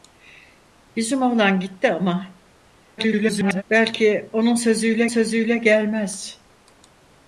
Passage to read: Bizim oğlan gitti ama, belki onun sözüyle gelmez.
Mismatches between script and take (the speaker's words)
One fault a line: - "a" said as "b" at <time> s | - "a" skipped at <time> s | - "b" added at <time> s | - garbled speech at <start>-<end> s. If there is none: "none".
- garbled speech at 3.0-3.6 s
- "sözüyle" added at 5.0 s